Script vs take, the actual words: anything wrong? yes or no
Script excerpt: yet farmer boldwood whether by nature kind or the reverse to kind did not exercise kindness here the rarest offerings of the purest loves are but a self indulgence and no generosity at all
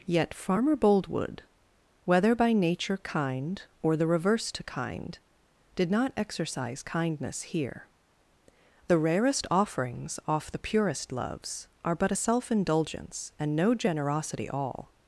yes